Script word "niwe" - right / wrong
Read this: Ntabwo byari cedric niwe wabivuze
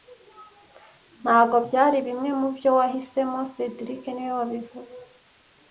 right